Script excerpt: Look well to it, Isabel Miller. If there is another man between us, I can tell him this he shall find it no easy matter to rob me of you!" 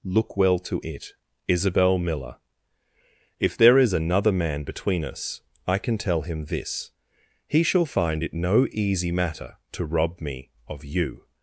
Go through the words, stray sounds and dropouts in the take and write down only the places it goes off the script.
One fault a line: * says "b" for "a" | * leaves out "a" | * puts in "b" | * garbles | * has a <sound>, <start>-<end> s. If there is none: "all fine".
all fine